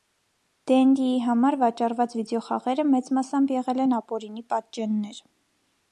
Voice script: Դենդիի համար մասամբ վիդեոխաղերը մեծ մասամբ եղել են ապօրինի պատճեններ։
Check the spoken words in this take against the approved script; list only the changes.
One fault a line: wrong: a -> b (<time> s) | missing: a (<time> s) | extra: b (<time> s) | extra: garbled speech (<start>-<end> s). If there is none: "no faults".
wrong: մասամբ -> վաճառված (1.6 s)